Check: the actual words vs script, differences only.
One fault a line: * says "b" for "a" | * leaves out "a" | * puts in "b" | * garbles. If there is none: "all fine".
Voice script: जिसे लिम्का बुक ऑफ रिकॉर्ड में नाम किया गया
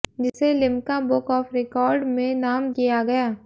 all fine